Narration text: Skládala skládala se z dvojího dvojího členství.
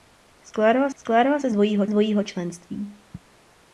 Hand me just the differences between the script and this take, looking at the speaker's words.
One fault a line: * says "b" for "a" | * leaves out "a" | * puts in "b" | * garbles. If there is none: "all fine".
all fine